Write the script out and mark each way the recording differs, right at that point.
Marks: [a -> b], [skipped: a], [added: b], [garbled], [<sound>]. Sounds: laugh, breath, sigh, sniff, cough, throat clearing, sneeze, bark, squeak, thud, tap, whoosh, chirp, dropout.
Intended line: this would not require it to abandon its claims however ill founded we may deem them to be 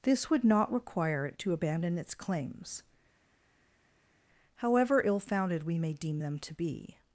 this would not require it to abandon its claims however ill founded we may deem them to be